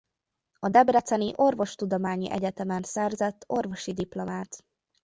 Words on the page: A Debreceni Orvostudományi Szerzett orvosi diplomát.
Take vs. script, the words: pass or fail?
fail